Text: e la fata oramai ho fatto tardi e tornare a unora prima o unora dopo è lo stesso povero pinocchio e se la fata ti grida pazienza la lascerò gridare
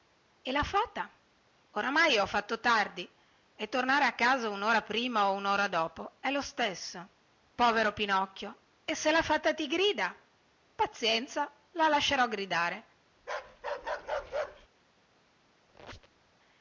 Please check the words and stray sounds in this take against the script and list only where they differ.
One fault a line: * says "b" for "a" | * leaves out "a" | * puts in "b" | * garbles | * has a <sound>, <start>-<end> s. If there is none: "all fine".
* puts in "casa"
* has a bark, 13.2-14.7 s
* has a squeak, 15.7-16.3 s